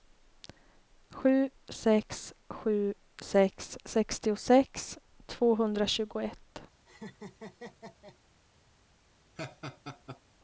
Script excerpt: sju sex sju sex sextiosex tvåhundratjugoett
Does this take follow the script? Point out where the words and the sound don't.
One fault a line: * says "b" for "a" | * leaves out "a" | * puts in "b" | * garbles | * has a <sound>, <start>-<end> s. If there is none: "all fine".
* has a laugh, 6.9-8.2 s
* has a laugh, 9.4-10.2 s